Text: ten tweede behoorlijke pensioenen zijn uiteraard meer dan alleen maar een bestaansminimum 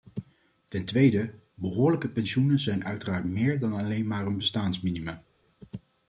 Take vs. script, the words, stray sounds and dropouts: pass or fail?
pass